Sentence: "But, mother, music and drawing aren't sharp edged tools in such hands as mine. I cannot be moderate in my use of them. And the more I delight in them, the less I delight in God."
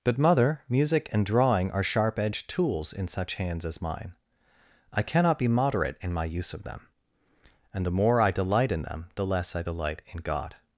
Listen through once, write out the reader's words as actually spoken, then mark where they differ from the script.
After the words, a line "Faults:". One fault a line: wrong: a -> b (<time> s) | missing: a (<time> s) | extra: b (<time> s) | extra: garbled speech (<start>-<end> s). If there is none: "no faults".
"But, mother, music and drawing are sharp edged tools in such hands as mine. I cannot be moderate in my use of them. And the more I delight in them, the less I delight in God."
Faults:
wrong: aren't -> are (1.7 s)